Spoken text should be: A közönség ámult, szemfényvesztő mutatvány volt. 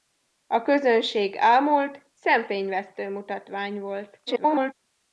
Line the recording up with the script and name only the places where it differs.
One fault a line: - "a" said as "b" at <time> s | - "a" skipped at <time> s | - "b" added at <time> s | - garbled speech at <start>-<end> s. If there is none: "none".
- garbled speech at 4.3-4.7 s